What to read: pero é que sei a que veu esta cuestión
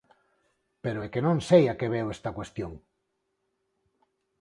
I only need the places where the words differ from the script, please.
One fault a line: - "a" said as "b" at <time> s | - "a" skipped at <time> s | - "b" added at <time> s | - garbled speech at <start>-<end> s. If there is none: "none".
- "non" added at 1.3 s